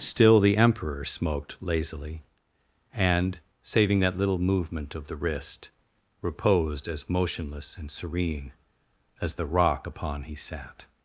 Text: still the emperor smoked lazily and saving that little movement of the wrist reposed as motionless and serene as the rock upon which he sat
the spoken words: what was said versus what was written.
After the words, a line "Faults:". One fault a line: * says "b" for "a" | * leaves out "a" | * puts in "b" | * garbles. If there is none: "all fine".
still the emperor smoked lazily and saving that little movement of the wrist reposed as motionless and serene as the rock upon he sat
Faults:
* leaves out "which"